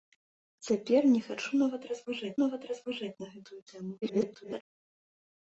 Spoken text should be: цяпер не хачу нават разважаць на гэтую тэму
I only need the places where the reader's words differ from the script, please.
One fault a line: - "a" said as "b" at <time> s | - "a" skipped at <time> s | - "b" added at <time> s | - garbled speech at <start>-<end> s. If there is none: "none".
- "нават разважаць" added at 2.4 s
- garbled speech at 4.0-4.6 s